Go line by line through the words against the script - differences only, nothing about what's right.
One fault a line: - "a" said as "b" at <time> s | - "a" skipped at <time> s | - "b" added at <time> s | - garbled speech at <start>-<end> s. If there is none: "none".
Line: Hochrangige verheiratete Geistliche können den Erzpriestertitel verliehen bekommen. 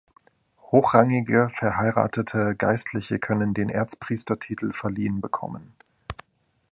none